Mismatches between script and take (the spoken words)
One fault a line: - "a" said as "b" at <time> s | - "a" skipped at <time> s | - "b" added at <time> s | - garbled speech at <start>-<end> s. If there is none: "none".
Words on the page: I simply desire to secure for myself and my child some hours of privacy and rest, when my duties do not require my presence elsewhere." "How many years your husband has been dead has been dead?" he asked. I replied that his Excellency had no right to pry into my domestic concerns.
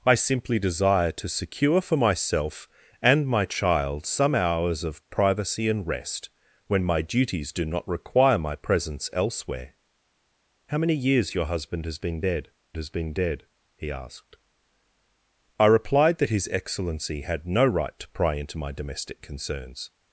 none